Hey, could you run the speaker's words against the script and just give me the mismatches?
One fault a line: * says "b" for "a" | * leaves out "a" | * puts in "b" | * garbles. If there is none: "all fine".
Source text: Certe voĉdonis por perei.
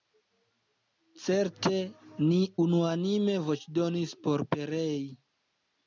* puts in "ni unuanime"